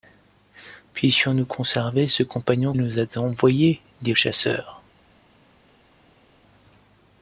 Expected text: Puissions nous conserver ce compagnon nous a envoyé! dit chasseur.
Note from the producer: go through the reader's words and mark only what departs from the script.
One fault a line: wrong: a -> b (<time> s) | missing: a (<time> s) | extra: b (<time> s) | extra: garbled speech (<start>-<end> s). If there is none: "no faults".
no faults